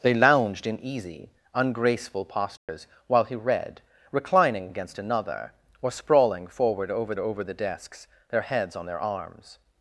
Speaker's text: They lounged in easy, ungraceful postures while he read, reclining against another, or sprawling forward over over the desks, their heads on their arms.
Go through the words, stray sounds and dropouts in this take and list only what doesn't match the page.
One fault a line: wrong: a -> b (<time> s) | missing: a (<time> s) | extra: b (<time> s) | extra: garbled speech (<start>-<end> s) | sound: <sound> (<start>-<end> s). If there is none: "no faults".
sound: dropout (2.6-2.7 s)